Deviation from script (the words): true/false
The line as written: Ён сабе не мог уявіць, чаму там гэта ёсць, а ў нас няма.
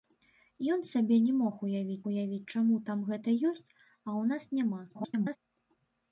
true